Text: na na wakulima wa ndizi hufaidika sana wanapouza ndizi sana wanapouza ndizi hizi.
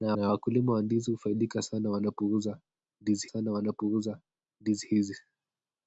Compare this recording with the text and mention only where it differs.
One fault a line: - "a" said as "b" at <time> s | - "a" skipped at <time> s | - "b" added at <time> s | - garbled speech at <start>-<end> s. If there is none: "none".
none